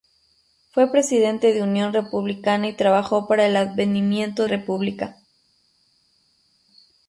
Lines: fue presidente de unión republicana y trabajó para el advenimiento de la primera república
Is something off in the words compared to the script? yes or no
yes